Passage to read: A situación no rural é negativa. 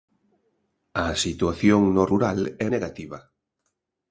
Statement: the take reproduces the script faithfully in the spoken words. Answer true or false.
true